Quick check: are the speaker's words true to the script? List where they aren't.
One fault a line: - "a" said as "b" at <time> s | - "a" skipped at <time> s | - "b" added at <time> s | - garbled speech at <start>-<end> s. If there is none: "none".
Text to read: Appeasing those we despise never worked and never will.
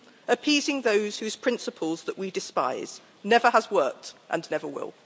- "whose principles that" added at 1.2 s
- "has" added at 3.5 s